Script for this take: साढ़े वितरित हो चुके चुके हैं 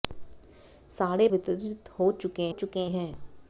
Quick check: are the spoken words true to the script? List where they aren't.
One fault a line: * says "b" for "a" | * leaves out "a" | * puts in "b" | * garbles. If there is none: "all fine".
all fine